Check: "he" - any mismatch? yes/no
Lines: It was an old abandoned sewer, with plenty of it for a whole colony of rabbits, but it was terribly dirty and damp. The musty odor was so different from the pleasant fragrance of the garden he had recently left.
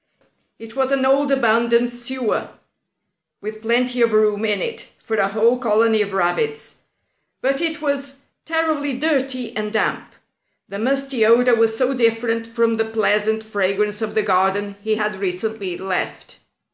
no